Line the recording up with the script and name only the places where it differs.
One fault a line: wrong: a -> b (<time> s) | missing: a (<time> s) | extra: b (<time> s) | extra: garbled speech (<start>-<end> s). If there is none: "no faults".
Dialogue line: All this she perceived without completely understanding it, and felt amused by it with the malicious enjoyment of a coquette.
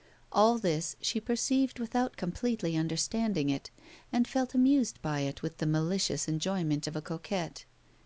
no faults